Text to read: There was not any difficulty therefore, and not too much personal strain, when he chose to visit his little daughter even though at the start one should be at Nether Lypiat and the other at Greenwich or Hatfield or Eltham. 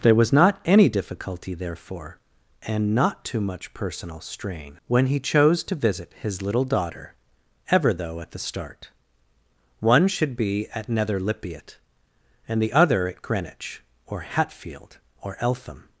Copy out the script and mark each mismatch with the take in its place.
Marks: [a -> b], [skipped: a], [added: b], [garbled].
There was not any difficulty therefore, and not too much personal strain, when he chose to visit his little daughter [even -> ever] though at the start one should be at Nether Lypiat and the other at Greenwich or Hatfield or Eltham.